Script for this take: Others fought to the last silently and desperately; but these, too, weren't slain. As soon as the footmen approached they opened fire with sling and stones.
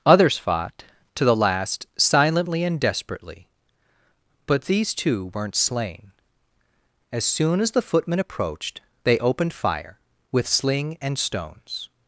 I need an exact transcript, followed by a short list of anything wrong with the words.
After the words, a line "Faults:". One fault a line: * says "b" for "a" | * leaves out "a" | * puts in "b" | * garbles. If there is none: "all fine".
Others fought to the last silently and desperately; but these, too, weren't slain. As soon as the footmen approached they opened fire with sling and stones.
Faults:
all fine